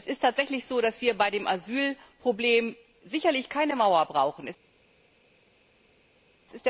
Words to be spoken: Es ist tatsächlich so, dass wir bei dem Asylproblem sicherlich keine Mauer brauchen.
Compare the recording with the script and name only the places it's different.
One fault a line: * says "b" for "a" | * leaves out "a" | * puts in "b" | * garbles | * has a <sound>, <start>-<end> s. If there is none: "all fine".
all fine